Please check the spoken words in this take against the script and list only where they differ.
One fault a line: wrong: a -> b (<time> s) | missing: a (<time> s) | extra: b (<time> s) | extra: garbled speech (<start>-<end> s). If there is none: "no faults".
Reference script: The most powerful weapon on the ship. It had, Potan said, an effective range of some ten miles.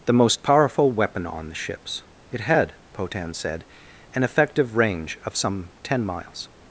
wrong: ship -> ships (1.5 s)